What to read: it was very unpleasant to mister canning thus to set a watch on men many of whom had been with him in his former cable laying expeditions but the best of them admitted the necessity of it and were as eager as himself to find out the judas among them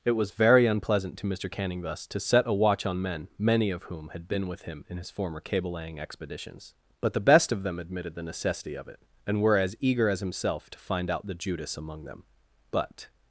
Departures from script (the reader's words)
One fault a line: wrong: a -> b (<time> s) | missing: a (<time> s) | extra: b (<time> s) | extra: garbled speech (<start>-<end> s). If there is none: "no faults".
extra: but (12.7 s)